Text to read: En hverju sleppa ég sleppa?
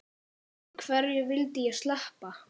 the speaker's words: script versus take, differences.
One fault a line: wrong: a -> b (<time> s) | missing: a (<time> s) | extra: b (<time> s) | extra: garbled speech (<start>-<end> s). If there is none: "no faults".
wrong: sleppa -> vildi (1.3 s)